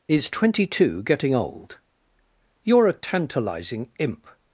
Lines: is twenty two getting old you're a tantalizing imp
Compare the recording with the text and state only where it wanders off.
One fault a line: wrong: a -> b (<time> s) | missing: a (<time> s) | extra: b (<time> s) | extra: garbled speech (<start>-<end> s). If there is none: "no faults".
no faults